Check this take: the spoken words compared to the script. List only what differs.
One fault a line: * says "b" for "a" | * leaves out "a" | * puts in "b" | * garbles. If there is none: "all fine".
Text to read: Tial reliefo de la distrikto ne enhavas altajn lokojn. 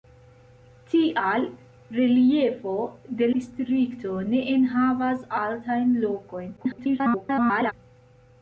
* leaves out "la"
* garbles